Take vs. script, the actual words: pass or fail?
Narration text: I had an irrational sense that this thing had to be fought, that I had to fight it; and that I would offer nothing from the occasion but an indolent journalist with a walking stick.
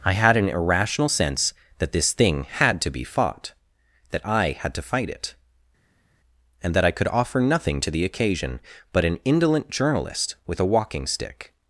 fail